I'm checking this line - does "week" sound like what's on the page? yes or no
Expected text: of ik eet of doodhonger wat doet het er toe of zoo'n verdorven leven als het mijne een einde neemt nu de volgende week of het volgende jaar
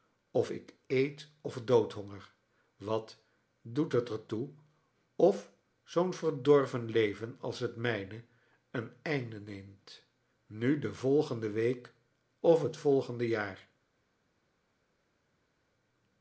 yes